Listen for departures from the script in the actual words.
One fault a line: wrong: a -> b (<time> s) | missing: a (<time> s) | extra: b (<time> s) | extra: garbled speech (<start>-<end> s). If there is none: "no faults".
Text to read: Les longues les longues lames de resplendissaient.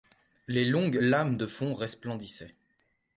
missing: les longues (1.0 s)
extra: fond (1.5 s)